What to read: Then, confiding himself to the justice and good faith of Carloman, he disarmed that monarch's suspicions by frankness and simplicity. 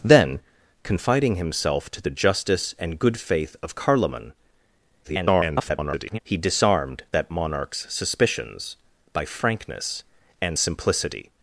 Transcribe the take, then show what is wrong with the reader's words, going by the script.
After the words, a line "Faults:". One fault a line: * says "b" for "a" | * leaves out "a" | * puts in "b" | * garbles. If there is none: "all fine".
Then, confiding himself to the justice and good faith of Carloman, [garbled] he disarmed that monarch's suspicions by frankness and simplicity.
Faults:
* garbles